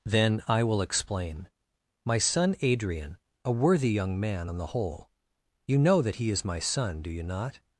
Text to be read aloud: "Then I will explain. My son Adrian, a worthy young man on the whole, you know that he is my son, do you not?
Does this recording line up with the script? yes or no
yes